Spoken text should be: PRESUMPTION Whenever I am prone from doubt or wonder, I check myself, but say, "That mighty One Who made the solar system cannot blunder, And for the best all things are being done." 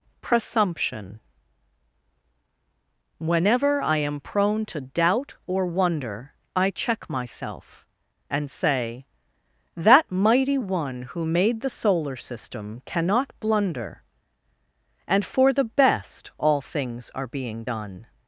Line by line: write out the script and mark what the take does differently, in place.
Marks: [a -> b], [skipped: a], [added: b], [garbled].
PRESUMPTION Whenever I am prone [from -> to] doubt or wonder, I check myself, [but -> and] say, "That mighty One Who made the solar system cannot blunder, And for the best all things are being done."